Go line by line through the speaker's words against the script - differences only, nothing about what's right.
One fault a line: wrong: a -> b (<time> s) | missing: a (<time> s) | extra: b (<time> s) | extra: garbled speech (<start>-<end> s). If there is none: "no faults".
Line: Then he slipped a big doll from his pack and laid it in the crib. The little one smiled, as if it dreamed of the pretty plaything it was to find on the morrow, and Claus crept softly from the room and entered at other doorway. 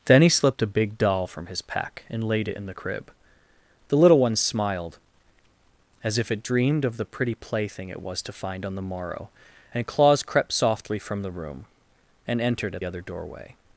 no faults